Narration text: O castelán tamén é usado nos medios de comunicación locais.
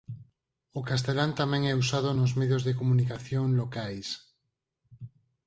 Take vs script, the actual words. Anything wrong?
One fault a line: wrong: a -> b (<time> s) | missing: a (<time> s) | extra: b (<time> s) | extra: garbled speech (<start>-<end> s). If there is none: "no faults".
no faults